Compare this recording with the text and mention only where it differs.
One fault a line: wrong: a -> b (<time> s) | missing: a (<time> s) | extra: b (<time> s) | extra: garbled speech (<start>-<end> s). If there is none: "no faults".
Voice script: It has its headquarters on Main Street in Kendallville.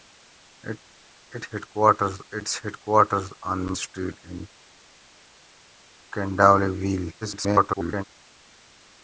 wrong: has -> headquarters (1.5 s)
missing: Main (3.7 s)
extra: garbled speech (7.2-8.0 s)